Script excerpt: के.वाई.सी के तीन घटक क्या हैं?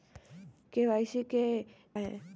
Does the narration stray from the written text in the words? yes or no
yes